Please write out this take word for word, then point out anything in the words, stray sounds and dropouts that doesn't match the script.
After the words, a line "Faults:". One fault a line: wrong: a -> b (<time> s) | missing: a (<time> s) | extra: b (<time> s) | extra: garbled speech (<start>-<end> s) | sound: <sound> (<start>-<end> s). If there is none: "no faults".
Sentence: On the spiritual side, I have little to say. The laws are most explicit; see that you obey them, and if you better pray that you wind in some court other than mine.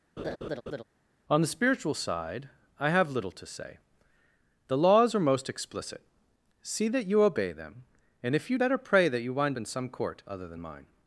On the spiritual side, I have little to say. The laws are most explicit; see that you obey them, and if you better pray that you wind in some court other than mine.
Faults:
sound: laugh (0.2-0.8 s)